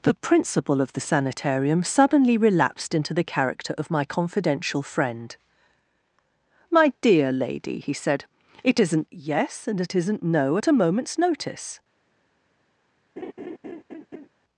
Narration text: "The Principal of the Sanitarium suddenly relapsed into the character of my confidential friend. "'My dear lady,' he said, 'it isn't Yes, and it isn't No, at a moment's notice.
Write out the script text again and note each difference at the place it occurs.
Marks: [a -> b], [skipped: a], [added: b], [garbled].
"The Principal of the Sanitarium suddenly relapsed into the character of my confidential friend. "'My dear lady,' he said, 'it isn't Yes, and it isn't No, at a moment's notice.